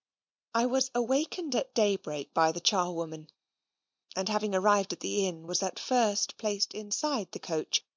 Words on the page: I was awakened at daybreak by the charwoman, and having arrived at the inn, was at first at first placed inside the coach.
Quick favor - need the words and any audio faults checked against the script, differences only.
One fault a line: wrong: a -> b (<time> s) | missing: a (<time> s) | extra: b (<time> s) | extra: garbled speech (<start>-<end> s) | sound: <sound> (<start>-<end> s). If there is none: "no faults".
missing: at first (6.4 s)